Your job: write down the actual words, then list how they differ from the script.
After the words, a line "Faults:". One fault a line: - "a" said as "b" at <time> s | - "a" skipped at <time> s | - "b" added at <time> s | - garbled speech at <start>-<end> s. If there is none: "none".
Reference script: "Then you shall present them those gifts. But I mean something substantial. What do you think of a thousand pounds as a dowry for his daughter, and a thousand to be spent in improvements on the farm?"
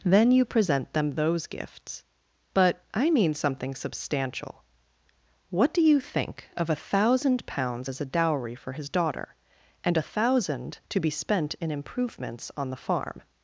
"Then you present them those gifts. But I mean something substantial. What do you think of a thousand pounds as a dowry for his daughter, and a thousand to be spent in improvements on the farm?"
Faults:
- "shall" skipped at 0.5 s